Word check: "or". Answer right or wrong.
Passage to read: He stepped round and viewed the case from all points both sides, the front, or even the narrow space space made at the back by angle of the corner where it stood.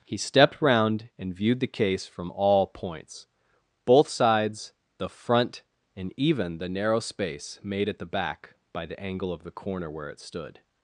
wrong